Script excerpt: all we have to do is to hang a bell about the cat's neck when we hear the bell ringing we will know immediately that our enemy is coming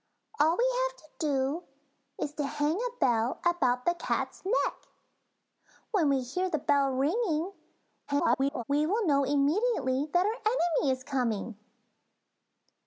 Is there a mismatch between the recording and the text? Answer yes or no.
yes